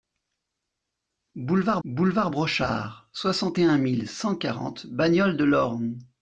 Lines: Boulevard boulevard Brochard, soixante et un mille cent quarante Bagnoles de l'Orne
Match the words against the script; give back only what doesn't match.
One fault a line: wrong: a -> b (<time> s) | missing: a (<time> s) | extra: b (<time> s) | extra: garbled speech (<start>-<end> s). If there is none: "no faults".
no faults